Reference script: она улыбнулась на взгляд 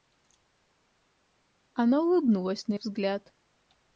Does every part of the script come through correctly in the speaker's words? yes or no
yes